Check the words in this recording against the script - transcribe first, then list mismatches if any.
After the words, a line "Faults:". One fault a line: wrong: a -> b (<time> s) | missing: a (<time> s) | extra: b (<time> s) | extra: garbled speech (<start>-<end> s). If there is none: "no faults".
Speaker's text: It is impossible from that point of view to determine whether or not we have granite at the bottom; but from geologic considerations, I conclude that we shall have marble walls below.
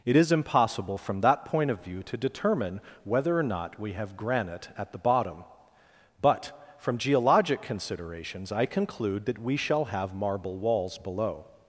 It is impossible from that point of view to determine whether or not we have granite at the bottom; but from geologic considerations, I conclude that we shall have marble walls below.
Faults:
no faults